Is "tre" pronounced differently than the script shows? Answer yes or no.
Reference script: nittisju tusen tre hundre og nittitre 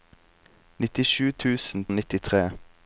yes